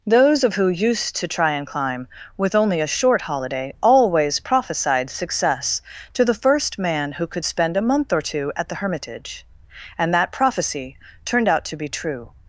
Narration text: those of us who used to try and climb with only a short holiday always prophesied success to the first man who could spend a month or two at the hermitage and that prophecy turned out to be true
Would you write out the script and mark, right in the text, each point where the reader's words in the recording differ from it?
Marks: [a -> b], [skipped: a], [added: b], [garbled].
those of [skipped: us] who used to try and climb with only a short holiday always prophesied success to the first man who could spend a month or two at the hermitage and that prophecy turned out to be true